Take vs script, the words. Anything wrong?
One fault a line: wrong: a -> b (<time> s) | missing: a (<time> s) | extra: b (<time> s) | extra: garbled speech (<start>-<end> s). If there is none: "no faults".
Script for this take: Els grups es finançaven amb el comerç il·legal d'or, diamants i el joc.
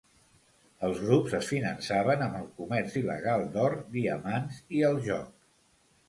no faults